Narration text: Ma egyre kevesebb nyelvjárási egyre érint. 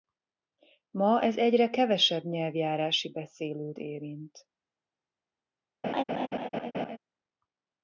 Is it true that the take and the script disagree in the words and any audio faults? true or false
true